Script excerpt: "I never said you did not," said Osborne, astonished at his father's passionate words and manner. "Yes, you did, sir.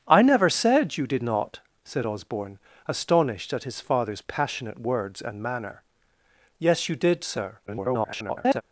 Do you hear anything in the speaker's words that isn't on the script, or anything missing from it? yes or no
yes